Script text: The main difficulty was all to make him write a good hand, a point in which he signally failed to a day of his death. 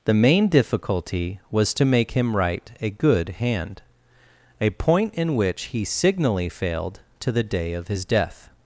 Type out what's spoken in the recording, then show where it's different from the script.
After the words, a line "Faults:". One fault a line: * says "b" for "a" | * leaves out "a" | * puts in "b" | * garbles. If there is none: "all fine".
The main difficulty was to make him write a good hand, a point in which he signally failed to the day of his death.
Faults:
* leaves out "all"
* says "the" for "a"